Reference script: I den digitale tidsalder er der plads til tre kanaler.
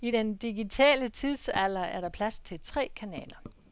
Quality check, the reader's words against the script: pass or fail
pass